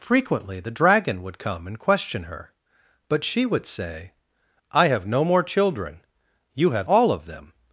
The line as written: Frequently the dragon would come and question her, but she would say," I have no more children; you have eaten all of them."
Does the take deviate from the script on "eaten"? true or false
true